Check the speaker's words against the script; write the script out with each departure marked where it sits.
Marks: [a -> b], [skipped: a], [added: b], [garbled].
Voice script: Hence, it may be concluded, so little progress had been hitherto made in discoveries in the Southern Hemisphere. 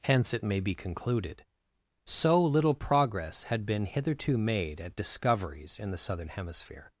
Hence, it may be concluded, so little progress had been hitherto made [in -> at] discoveries in the Southern Hemisphere.